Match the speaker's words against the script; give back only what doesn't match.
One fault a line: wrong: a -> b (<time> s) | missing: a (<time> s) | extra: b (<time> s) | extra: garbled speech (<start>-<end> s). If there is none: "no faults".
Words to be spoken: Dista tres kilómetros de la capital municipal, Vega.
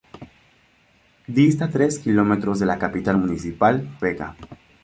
no faults